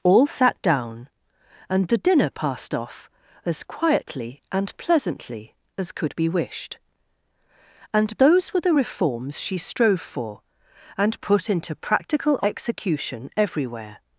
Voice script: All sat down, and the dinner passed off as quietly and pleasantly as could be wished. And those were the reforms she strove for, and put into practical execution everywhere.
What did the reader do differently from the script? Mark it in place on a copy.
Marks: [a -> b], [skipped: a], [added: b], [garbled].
All sat down, and the dinner passed off as quietly and pleasantly as could be wished. And those were the reforms she strove for, and put into practical execution everywhere.